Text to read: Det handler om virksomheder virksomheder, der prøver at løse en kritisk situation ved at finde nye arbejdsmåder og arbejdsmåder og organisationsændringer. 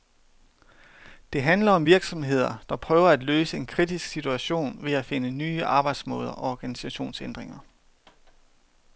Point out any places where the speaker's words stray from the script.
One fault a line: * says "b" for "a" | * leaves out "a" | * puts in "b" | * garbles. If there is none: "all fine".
* leaves out "virksomheder"
* leaves out "arbejdsmåder og"